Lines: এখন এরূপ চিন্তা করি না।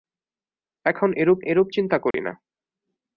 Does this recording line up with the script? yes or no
no